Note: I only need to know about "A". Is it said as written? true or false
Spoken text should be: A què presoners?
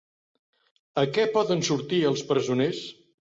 true